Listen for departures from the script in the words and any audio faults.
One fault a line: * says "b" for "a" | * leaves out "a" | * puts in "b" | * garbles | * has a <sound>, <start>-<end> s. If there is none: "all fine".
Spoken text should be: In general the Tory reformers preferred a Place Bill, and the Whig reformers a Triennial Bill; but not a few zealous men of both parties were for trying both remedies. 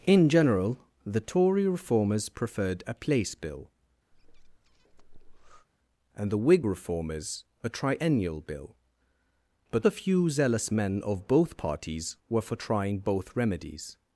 * has a breath, 4.1-5.7 s
* leaves out "not"